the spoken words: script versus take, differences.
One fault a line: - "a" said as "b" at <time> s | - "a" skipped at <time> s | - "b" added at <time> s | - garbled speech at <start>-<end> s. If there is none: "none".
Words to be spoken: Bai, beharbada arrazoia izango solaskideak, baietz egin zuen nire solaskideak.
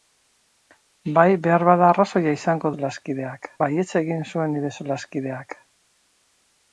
none